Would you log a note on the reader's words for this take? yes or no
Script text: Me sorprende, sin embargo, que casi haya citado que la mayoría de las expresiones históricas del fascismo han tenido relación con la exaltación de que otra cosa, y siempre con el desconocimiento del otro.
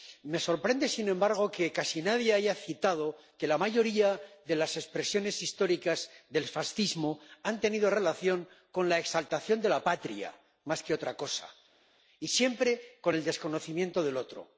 yes